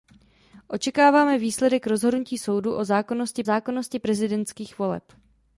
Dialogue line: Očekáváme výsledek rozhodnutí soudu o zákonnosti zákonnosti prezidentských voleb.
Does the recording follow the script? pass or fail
pass